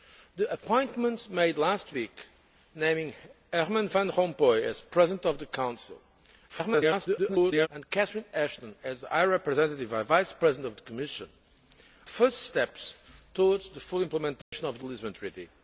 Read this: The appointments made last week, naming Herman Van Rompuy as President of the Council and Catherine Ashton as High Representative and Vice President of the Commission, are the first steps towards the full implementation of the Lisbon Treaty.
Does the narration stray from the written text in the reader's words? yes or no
yes